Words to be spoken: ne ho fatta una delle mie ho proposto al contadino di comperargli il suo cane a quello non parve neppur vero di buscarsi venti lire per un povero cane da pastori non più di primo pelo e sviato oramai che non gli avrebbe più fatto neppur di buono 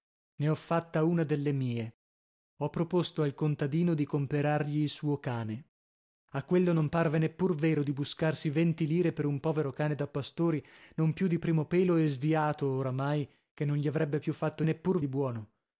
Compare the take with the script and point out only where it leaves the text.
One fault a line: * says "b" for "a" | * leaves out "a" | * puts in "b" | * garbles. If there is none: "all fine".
all fine